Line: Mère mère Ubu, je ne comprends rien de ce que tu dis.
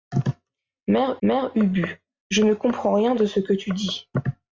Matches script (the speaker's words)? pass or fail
pass